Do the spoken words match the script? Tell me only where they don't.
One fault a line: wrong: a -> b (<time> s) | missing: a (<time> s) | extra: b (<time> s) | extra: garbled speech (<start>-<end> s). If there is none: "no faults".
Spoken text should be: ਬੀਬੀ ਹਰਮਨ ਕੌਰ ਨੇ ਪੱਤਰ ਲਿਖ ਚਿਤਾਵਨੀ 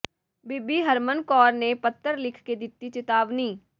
extra: ਕੇ ਦਿੱਤੀ (2.4 s)